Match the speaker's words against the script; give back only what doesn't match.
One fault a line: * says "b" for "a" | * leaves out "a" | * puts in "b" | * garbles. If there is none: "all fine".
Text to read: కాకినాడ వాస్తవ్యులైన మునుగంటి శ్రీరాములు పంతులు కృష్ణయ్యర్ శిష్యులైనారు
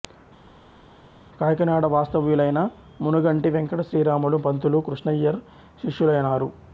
* puts in "వెంకట"